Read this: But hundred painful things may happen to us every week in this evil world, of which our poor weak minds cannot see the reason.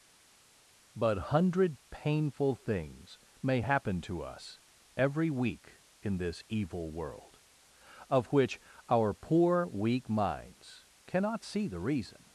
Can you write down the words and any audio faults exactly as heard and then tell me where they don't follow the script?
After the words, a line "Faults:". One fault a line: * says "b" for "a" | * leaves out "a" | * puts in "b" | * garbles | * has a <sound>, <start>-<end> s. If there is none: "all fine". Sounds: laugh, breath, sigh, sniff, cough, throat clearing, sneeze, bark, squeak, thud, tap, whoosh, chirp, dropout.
But hundred painful things may happen to us every week in this evil world, of which our poor weak minds cannot see the reason.
Faults:
all fine